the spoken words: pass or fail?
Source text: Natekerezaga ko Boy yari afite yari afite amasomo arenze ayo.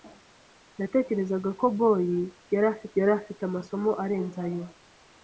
pass